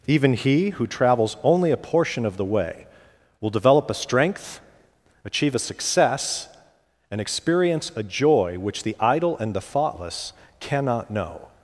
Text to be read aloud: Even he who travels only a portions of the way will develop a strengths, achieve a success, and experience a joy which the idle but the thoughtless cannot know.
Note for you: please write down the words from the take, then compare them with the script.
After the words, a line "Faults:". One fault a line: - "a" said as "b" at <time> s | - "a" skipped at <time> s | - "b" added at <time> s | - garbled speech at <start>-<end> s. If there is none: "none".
Even he who travels only a portion of the way will develop a strength, achieve a success, and experience a joy which the idle and the thoughtless cannot know.
Faults:
- "portions" said as "portion" at 1.8 s
- "strengths" said as "strength" at 3.9 s
- "but" said as "and" at 9.4 s